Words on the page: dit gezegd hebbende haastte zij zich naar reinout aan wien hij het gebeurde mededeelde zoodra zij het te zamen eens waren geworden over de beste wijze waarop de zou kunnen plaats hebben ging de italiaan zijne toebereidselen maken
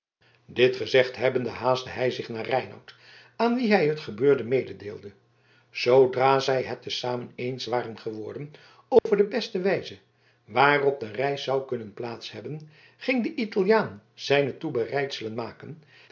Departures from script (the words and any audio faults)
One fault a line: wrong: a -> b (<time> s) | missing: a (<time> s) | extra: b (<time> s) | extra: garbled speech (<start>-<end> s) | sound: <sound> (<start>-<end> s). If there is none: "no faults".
wrong: zij -> hij (1.9 s)
sound: dropout (9.0-9.1 s)
extra: reis (11.1 s)